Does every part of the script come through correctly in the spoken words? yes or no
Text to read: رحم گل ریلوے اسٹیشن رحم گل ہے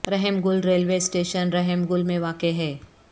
no